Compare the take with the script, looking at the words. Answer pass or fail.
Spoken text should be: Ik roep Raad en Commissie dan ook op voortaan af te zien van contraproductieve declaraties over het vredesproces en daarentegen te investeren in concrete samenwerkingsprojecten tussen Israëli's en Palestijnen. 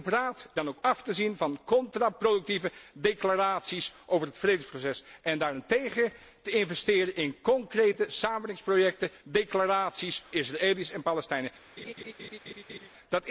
fail